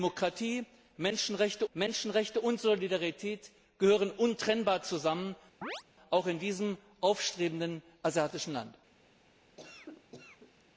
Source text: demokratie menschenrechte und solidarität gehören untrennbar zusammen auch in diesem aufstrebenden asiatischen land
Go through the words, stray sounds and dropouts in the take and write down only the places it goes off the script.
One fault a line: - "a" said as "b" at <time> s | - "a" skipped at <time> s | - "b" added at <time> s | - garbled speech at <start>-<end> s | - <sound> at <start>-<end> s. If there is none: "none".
- "menschenrechte" added at 1.7 s
- chirp at 5.6-5.8 s
- cough at 9.6-10.6 s